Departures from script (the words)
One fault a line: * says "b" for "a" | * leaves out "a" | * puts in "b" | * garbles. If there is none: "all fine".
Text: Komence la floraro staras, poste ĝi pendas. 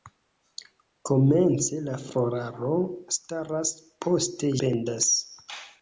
* leaves out "ĝi"